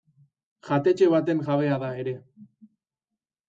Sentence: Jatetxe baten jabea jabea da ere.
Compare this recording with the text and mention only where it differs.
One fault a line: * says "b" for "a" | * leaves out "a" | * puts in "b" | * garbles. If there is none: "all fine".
* leaves out "jabea"